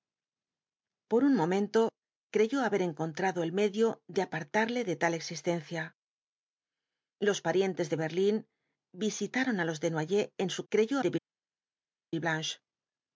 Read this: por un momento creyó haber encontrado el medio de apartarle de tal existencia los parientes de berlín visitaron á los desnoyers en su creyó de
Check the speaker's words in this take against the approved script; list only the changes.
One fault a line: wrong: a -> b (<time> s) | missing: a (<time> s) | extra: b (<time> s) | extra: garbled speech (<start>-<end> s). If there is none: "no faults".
no faults